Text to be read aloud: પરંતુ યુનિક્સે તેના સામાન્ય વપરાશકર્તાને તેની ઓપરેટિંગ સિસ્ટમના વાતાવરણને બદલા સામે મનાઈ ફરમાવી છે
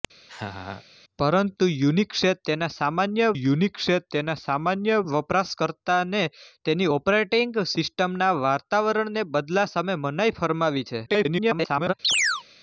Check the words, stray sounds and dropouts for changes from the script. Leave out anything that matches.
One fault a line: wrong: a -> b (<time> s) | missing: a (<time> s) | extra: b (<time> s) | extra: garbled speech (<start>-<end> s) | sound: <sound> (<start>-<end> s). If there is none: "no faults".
sound: laugh (0.3-0.8 s)
extra: યુનિક્સે તેના સામાન્ય (3.3 s)
extra: garbled speech (11.1-11.9 s)
sound: chirp (12.0-12.4 s)